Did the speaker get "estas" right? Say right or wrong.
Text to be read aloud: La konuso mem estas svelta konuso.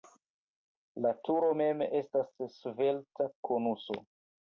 right